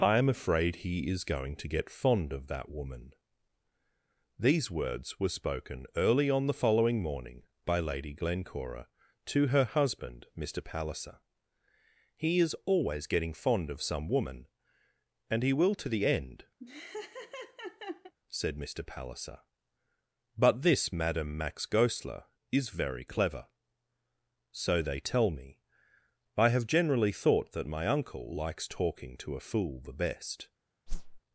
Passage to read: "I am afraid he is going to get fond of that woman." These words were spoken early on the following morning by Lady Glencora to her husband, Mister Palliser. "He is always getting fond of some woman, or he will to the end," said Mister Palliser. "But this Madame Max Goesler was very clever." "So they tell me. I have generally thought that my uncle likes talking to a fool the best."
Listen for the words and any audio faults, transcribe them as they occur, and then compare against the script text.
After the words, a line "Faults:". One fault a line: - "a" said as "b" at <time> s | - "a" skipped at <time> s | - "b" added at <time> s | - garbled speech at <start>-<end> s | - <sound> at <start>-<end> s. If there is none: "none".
"I am afraid he is going to get fond of that woman." These words were spoken early on the following morning by Lady Glencora to her husband, Mister Palliser. "He is always getting fond of some woman, and he will to the end," said Mister Palliser. "But this Madame Max Goesler is very clever." "So they tell me. I have generally thought that my uncle likes talking to a fool the best."
Faults:
- "or" said as "and" at 15.3 s
- laugh at 16.6-18.1 s
- "was" said as "is" at 22.5 s
- whoosh at 30.9-31.2 s